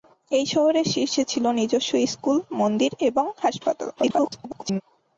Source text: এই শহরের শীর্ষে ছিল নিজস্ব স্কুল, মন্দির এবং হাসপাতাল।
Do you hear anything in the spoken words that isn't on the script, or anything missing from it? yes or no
yes